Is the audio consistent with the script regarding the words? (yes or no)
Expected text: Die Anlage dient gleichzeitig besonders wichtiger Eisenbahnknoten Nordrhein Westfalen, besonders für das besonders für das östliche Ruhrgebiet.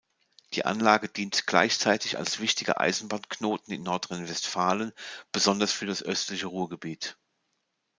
no